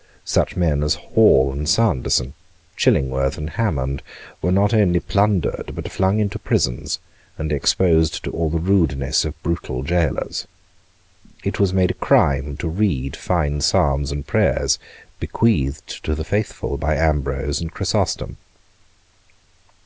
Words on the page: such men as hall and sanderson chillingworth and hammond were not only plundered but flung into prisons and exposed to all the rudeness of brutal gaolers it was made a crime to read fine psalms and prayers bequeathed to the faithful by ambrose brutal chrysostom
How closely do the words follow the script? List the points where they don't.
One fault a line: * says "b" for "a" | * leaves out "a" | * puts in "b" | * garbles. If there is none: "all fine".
* says "and" for "brutal"